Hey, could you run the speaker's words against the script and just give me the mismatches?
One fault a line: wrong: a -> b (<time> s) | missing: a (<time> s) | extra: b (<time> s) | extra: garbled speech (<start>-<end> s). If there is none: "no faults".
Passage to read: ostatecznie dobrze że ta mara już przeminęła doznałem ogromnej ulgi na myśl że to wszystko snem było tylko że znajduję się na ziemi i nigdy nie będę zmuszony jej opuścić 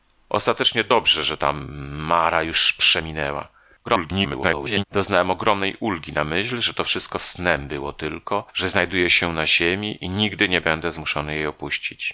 extra: garbled speech (3.8-4.8 s)